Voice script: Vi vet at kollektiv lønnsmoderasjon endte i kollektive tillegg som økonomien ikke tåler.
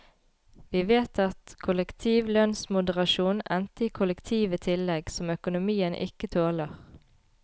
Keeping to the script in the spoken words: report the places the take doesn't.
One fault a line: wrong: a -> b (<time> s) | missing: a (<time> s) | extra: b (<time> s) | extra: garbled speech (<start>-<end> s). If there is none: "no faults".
no faults